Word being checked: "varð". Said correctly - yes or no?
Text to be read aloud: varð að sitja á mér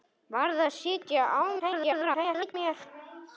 yes